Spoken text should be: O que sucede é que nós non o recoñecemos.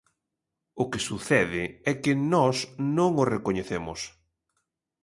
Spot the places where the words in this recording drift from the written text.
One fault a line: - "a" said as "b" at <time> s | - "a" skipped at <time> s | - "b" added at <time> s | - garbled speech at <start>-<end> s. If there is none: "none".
none